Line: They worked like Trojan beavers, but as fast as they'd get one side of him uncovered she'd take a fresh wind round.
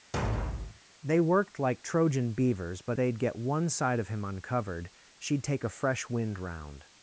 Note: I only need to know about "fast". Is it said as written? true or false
false